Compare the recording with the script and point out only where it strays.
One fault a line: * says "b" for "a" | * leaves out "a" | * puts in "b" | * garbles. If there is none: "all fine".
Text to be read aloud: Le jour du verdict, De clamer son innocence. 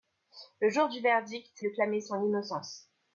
all fine